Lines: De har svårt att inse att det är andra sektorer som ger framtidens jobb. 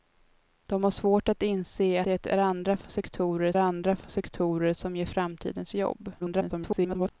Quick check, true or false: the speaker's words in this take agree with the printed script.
false